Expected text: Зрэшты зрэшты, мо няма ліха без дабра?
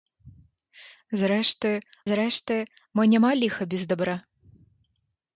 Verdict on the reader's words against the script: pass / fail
pass